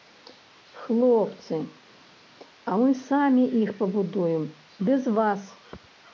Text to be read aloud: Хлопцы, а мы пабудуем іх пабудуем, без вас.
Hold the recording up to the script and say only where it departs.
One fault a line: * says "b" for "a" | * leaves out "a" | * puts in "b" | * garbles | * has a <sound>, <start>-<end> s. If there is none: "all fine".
* says "самі" for "пабудуем"